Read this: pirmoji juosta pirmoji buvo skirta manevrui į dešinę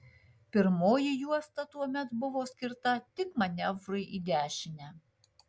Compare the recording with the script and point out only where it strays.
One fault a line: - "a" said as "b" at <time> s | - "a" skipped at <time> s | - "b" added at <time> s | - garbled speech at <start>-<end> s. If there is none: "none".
- "pirmoji" said as "tuomet" at 1.8 s
- "tik" added at 3.2 s